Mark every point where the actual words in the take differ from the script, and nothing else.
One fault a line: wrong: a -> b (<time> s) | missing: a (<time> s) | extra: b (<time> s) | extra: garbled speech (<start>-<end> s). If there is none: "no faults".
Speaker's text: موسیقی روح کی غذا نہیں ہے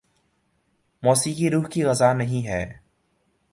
no faults